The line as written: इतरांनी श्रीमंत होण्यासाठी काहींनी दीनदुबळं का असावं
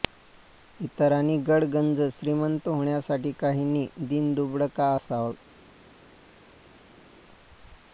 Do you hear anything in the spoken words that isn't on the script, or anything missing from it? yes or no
yes